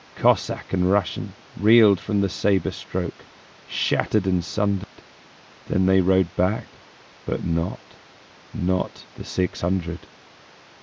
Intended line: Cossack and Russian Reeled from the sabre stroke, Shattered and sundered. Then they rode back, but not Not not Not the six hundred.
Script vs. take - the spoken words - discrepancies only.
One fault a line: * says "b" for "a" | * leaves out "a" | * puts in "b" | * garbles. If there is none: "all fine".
* leaves out "not Not"